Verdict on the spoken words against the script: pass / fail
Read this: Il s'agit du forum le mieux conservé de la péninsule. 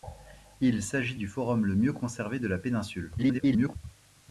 fail